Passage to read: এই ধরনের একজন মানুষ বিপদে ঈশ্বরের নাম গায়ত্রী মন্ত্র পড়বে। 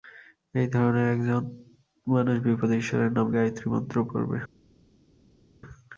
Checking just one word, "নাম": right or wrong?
right